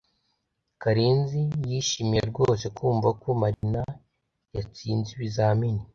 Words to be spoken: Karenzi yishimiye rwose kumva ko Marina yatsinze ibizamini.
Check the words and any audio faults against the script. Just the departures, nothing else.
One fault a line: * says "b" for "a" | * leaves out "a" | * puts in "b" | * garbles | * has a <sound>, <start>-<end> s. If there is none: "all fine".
* has a dropout, 3.5-3.6 s